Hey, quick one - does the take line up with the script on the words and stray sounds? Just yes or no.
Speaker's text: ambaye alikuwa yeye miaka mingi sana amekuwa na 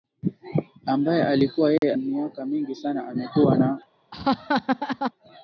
no